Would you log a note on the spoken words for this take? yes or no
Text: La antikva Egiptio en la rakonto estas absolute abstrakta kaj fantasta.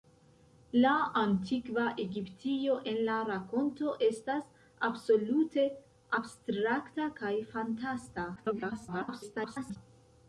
yes